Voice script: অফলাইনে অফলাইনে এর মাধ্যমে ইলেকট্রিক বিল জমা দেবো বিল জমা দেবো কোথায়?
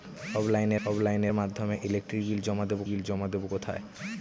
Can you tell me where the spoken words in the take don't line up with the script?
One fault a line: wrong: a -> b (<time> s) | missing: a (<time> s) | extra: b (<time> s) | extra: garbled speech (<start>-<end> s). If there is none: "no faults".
no faults